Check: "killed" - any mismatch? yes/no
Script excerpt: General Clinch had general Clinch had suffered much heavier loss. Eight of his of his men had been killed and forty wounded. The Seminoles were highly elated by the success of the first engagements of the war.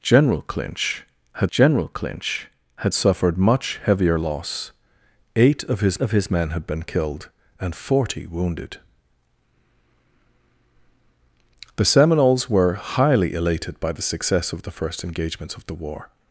no